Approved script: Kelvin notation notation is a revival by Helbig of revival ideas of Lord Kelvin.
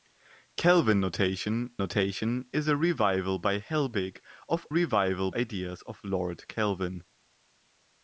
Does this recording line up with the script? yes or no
yes